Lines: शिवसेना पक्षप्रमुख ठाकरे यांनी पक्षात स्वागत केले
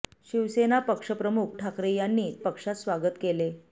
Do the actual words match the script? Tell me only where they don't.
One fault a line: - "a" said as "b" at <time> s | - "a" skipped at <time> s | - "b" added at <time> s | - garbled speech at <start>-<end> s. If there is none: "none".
none